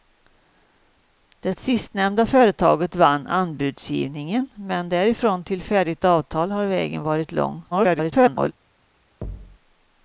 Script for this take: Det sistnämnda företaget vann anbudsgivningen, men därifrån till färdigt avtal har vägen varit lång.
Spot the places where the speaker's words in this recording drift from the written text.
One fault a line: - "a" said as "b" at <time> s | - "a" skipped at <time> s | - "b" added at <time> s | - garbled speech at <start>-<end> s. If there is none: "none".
- garbled speech at 7.7-8.5 s